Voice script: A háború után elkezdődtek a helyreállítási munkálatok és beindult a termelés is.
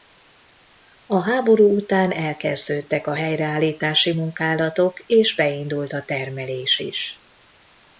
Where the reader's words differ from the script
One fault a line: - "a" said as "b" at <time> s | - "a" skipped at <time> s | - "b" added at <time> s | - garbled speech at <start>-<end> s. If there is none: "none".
none